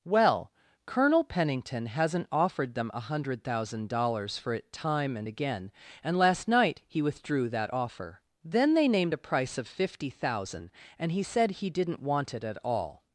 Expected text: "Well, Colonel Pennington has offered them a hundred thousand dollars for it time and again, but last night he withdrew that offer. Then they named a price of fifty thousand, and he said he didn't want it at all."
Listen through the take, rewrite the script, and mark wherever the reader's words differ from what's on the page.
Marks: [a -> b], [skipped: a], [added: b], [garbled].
"Well, Colonel Pennington [has -> hasn't] offered them a hundred thousand dollars for it time and again, [but -> and] last night he withdrew that offer. Then they named a price of fifty thousand, and he said he didn't want it at all."